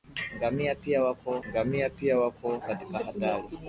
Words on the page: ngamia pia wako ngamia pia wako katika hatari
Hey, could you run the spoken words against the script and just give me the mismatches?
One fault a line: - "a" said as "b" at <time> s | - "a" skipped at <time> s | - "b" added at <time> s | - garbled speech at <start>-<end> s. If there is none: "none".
none